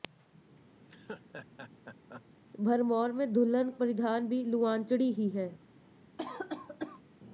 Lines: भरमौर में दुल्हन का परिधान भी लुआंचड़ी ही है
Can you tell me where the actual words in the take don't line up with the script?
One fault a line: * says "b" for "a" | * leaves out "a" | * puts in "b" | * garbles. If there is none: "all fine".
* leaves out "का"